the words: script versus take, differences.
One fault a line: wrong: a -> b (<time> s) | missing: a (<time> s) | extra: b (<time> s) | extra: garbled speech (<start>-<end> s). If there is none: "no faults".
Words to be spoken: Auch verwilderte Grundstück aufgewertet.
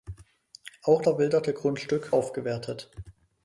no faults